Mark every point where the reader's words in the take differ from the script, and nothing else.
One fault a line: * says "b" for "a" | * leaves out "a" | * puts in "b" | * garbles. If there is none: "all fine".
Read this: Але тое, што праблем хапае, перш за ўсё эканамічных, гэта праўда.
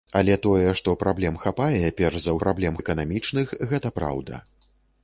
* says "праблем" for "ўсё"